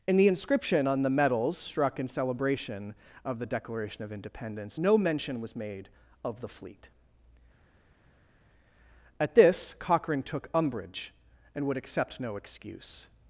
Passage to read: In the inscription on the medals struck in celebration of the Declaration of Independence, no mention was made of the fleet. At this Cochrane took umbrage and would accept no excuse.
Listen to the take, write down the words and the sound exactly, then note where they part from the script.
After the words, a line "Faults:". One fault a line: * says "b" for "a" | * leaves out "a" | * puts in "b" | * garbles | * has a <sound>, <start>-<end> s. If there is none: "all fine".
In the inscription on the medals struck in celebration of the Declaration of Independence, no mention was made of the fleet. At this Cochrane took umbrage and would accept no excuse.
Faults:
all fine